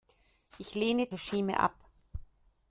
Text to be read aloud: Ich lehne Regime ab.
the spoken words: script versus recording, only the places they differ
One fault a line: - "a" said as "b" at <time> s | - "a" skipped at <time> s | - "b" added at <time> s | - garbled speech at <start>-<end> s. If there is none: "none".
none